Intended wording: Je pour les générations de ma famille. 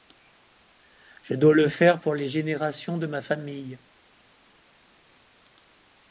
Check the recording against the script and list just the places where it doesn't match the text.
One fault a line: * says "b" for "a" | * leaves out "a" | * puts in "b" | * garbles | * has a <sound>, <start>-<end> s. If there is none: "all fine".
* puts in "dois le faire"